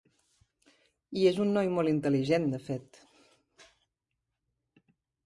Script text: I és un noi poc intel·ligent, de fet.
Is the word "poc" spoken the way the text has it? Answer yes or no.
no